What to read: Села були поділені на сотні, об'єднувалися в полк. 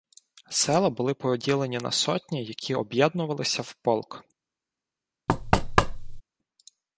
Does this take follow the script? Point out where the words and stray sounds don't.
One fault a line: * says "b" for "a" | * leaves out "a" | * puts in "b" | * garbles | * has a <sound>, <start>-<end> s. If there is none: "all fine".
* puts in "які"
* has a thud, 5.3-6.2 s